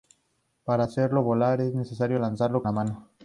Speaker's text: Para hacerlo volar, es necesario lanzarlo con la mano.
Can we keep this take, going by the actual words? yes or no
no